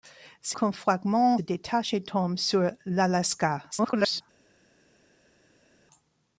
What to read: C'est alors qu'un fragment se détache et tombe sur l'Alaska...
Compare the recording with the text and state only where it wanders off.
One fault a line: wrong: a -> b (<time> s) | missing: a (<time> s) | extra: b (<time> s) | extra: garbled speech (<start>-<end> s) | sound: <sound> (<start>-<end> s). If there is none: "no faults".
missing: alors (0.6 s)
missing: se (1.4 s)
extra: garbled speech (3.7-4.2 s)